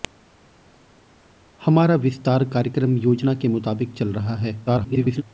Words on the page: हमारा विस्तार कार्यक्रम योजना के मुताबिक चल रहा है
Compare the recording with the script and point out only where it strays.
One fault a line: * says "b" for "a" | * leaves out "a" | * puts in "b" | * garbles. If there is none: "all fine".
* garbles